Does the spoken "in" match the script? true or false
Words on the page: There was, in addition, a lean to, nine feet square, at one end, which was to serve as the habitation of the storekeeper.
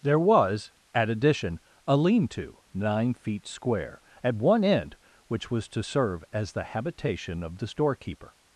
false